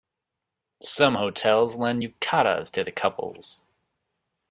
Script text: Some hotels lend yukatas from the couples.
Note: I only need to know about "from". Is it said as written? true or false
false